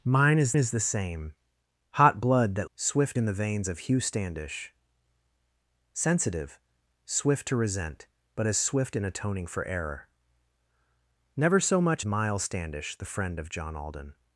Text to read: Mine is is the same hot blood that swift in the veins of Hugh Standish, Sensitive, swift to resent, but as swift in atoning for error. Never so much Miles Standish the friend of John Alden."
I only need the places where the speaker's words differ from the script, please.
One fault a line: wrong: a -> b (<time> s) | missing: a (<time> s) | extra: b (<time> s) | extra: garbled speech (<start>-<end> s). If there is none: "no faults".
no faults